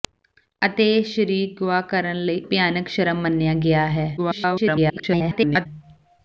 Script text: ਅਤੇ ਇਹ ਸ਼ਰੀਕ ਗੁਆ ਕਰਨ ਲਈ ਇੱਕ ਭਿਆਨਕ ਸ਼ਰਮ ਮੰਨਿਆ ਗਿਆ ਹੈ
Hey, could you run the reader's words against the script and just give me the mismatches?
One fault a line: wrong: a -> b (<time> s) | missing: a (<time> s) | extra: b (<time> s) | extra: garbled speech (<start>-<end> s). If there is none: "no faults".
missing: ਇੱਕ (2.4 s)
extra: garbled speech (4.2-5.7 s)